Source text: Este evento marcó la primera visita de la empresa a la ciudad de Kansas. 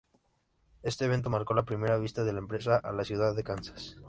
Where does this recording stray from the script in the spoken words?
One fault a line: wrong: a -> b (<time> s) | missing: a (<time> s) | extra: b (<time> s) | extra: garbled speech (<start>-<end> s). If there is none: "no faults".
no faults